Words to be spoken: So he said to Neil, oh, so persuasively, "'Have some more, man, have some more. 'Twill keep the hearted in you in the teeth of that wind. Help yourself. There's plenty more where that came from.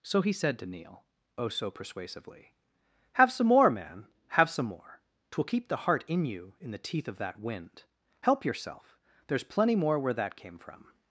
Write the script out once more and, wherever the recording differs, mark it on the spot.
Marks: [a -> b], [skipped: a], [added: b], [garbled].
So he said to Neil, oh, so persuasively, "'Have some more, man, have some more. 'Twill keep the [hearted -> heart] in you in the teeth of that wind. Help yourself. There's plenty more where that came from.